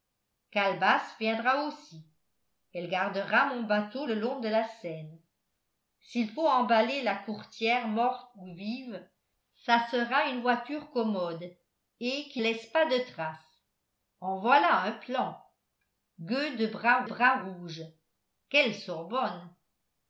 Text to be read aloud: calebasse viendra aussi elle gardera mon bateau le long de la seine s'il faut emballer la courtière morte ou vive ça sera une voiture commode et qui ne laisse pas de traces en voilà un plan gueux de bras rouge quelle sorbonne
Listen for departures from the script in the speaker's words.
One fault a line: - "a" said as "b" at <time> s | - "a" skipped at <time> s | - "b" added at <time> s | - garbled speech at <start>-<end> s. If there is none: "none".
- "ne" skipped at 12.4 s
- "bras" added at 17.0 s